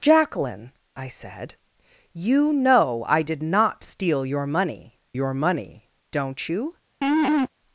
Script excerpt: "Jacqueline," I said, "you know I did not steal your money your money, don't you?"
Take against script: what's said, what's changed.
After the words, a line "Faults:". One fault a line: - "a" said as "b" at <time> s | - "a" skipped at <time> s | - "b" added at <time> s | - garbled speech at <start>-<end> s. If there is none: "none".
"Jacqueline," I said, "you know I did not steal your money your money, don't you?"
Faults:
none